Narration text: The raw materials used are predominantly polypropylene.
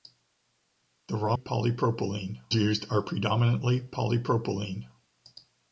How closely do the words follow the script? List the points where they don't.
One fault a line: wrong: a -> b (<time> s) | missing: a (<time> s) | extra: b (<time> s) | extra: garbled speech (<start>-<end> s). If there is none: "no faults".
wrong: materials -> polypropylene (1.3 s)